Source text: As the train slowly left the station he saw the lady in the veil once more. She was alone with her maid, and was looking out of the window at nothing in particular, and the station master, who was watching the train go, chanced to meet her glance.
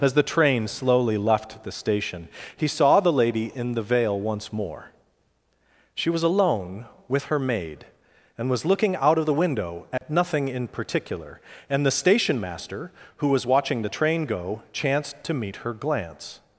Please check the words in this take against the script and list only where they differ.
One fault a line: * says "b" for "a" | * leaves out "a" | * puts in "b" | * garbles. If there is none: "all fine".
all fine